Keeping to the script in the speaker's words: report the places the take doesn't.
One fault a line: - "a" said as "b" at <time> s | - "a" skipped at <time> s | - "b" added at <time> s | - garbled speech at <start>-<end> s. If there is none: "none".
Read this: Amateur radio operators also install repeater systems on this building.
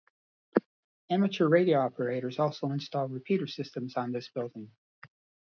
none